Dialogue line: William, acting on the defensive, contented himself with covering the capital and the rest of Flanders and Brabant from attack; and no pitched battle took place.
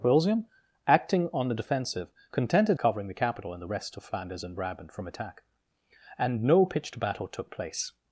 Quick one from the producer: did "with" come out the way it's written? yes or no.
no